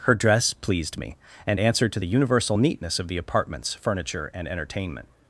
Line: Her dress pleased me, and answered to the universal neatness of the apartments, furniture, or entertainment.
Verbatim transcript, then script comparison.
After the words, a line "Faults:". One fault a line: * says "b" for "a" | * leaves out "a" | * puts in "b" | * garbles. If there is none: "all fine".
Her dress pleased me, and answered to the universal neatness of the apartments, furniture, and entertainment.
Faults:
* says "and" for "or"